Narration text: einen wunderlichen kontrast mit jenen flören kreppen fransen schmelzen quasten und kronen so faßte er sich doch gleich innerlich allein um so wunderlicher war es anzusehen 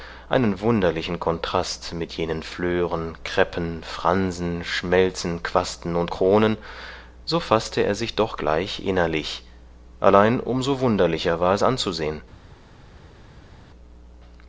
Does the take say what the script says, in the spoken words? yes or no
yes